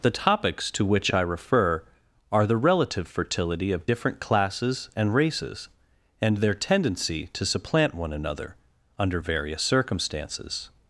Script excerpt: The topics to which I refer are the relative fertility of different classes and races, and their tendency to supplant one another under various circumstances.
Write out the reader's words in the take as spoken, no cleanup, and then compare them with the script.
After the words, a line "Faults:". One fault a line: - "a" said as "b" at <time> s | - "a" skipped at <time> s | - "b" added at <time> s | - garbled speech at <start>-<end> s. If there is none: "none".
The topics to which I refer are the relative fertility of different classes and races, and their tendency to supplant one another under various circumstances.
Faults:
none